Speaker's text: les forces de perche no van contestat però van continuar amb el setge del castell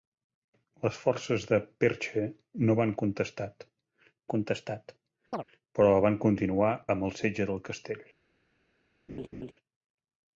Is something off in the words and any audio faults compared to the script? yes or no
yes